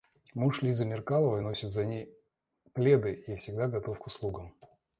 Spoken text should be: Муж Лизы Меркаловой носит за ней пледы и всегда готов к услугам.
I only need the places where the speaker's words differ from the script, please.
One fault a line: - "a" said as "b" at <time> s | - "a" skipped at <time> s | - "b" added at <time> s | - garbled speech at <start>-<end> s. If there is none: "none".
none